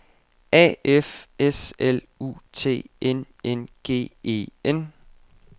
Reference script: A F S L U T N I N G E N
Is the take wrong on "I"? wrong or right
wrong